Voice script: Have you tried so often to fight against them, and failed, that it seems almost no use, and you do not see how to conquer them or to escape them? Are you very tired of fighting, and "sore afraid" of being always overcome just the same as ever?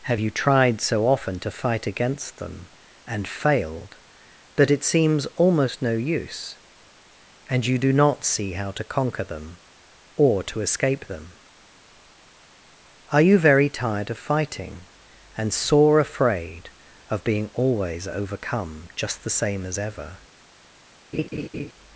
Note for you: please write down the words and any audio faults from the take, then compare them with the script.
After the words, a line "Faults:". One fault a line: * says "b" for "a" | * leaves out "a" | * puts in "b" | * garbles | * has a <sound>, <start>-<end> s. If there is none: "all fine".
Have you tried so often to fight against them, and failed, that it seems almost no use, and you do not see how to conquer them or to escape them? Are you very tired of fighting, and "sore afraid" of being always overcome just the same as ever?
Faults:
* has a laugh, 21.1-21.7 s